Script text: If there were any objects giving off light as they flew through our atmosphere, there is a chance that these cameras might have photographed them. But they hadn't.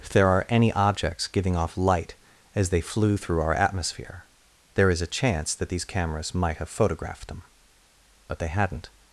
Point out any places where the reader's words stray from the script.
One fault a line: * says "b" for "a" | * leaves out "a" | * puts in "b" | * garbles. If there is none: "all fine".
* says "are" for "were"